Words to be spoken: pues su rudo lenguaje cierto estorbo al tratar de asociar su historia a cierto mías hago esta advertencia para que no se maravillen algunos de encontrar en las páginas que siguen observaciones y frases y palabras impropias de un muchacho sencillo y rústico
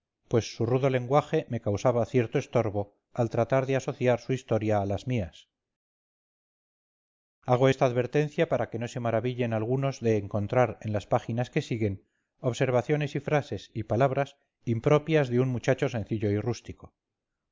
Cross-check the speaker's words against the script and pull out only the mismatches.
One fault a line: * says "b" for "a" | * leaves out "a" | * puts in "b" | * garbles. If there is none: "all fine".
* puts in "me causaba"
* says "las" for "cierto"